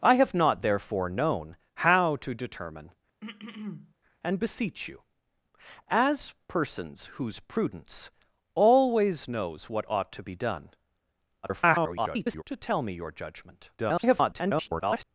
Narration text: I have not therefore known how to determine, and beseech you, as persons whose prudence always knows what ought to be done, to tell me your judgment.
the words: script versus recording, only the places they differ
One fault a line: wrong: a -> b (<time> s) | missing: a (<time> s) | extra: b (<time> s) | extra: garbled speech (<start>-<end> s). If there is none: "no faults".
extra: garbled speech (11.4-12.4 s)
extra: garbled speech (13.8-15.0 s)